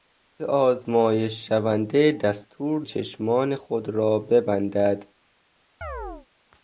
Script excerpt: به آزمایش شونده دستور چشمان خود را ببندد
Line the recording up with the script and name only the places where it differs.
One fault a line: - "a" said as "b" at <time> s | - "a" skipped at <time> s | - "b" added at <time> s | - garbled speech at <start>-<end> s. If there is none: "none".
none